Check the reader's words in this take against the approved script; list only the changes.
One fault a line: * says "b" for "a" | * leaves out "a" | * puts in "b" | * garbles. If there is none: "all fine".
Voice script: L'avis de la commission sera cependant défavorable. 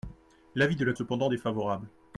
* leaves out "commission sera"